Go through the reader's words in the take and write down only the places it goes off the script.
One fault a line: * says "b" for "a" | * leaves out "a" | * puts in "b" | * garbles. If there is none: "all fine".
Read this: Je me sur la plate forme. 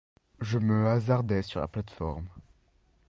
* puts in "hasardai"